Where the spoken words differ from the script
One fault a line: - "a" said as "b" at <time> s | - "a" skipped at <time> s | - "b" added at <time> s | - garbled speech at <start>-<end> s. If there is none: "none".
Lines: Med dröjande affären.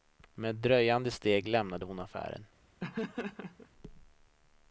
- "steg lämnade hon" added at 1.1 s